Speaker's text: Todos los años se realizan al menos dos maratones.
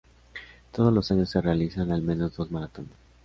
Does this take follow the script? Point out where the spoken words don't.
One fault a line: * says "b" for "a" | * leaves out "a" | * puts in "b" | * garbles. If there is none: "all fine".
all fine